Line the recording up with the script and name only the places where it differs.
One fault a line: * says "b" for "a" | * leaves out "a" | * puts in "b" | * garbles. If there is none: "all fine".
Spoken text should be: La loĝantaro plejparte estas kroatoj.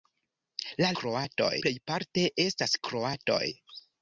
* says "kroatoj" for "loĝantaro"